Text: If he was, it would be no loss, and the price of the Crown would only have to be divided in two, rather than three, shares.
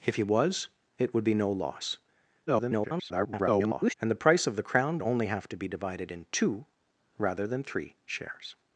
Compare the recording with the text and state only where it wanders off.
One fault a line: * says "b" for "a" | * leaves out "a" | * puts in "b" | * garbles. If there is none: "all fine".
* garbles
* leaves out "would"